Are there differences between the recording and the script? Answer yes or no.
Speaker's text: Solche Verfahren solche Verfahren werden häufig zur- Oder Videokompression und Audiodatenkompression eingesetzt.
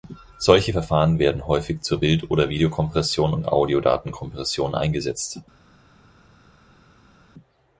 yes